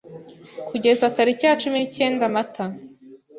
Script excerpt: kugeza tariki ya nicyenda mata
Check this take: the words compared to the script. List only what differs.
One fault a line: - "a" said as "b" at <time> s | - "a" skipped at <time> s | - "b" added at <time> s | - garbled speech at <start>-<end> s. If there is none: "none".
- "cumi" added at 1.6 s